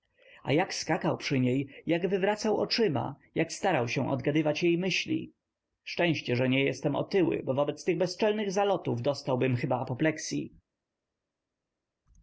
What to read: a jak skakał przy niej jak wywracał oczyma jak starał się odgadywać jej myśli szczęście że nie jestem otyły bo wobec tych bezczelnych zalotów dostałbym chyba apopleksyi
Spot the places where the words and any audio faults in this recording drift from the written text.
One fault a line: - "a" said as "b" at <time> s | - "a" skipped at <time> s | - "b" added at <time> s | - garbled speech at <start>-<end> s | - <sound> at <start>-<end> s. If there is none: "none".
none